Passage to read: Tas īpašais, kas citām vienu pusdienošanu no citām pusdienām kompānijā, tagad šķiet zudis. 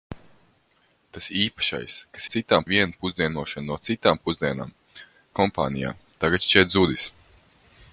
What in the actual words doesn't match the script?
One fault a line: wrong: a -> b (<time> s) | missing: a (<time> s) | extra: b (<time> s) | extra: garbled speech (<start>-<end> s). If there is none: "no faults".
no faults